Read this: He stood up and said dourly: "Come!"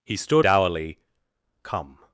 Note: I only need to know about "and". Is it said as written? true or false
false